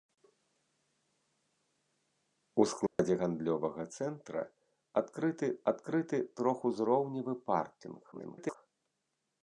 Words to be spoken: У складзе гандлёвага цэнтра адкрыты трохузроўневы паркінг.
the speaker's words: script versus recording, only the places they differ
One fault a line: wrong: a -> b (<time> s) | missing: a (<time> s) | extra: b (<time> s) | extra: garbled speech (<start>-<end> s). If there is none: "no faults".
extra: адкрыты (5.7 s)
extra: garbled speech (8.1-8.6 s)